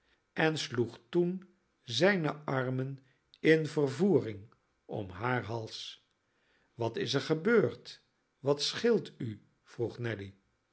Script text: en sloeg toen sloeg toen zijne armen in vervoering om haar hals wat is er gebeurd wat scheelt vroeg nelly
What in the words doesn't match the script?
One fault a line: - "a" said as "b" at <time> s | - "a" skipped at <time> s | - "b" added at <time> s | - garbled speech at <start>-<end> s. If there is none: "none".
- "sloeg toen" skipped at 1.5 s
- "u" added at 9.2 s